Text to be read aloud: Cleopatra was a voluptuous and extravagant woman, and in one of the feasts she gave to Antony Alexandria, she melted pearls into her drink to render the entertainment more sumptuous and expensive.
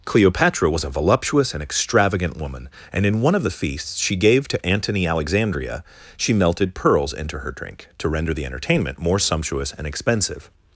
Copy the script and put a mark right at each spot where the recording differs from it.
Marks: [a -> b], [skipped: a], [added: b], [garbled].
Cleopatra was a voluptuous and extravagant woman, and in one of the feasts she gave to Antony Alexandria, she melted pearls into her drink to render the entertainment more sumptuous and expensive.